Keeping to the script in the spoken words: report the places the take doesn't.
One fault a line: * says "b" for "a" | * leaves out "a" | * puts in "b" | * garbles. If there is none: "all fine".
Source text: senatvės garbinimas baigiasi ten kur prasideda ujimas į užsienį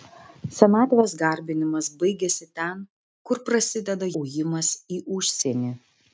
all fine